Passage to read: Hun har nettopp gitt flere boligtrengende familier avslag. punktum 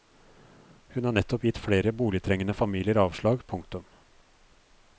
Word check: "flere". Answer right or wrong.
right